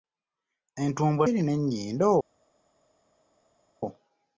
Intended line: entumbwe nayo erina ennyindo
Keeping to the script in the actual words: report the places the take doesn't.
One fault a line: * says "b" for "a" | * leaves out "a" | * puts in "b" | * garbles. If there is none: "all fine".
* leaves out "nayo"